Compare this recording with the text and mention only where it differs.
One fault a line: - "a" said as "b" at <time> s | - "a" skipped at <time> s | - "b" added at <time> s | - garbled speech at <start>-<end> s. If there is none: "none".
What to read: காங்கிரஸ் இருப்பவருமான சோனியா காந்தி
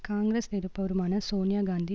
none